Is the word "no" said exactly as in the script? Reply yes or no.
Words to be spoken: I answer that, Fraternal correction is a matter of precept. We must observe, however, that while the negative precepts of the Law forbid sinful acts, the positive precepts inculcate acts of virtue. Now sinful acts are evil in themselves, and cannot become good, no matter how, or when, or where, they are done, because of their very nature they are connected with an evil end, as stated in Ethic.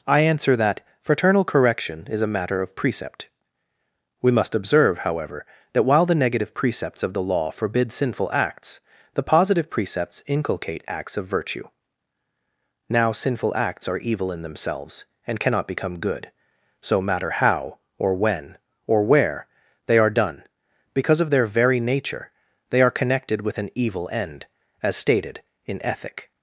no